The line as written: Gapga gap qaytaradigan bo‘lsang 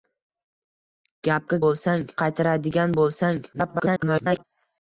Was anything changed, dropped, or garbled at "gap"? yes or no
yes